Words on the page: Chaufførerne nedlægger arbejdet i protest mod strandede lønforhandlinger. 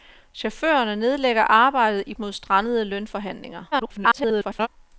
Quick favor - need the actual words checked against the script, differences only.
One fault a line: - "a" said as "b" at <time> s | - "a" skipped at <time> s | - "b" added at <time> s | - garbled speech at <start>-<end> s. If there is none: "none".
- "protest" skipped at 2.1 s
- garbled speech at 3.7-4.7 s